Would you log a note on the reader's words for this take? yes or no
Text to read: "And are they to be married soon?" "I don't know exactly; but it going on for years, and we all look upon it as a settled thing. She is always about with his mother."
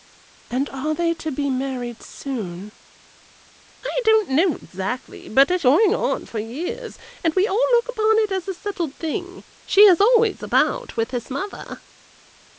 no